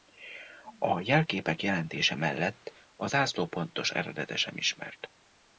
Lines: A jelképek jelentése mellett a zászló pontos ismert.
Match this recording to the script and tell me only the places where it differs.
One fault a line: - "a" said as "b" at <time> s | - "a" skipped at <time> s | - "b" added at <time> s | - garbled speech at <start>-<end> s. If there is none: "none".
- "eredete sem" added at 3.9 s